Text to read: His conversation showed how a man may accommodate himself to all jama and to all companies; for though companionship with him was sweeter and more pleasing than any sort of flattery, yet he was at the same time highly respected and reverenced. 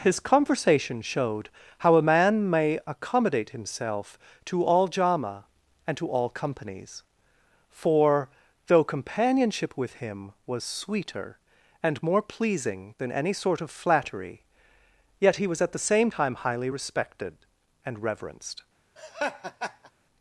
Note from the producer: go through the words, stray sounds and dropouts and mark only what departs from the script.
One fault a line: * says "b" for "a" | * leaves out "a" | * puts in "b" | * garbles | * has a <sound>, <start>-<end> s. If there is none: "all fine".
* has a laugh, 19.0-19.9 s